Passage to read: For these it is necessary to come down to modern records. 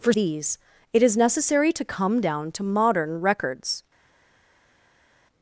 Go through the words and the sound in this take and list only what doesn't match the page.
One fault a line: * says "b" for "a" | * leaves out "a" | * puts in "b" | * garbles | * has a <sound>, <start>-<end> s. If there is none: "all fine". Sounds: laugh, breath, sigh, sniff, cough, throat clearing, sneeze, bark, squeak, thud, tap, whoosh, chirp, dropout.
all fine